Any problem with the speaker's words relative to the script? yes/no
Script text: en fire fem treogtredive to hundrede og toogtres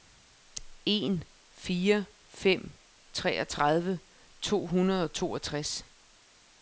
no